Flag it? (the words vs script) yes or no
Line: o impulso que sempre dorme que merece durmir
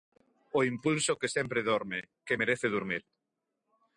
no